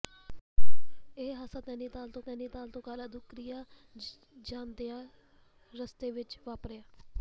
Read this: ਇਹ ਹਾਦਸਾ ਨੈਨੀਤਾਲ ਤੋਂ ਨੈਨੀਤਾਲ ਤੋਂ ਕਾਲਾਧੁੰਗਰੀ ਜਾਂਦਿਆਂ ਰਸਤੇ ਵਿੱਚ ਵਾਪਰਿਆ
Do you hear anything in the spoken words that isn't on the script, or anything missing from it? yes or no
no